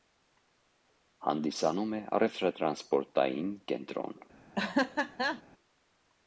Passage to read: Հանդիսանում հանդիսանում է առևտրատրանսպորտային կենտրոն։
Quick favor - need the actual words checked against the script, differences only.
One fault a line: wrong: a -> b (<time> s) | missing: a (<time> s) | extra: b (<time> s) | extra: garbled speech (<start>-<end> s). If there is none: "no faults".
missing: հանդիսանում (1.9 s)